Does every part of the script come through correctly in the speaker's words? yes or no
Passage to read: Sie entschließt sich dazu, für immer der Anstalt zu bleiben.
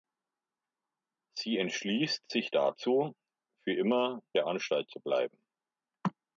yes